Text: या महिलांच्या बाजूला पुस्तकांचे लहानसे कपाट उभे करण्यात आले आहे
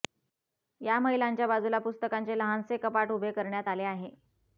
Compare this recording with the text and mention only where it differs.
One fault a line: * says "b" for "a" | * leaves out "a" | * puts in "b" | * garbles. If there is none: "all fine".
all fine